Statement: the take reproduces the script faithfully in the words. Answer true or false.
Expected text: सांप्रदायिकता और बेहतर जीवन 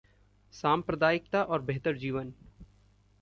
true